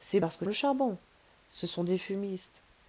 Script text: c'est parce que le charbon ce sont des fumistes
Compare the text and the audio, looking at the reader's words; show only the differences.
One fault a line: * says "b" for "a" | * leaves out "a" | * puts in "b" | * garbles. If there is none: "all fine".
all fine